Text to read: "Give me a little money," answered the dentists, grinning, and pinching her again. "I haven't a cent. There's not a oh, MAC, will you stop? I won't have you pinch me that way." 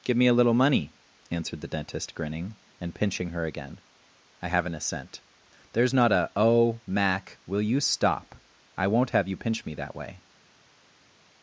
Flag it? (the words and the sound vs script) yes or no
yes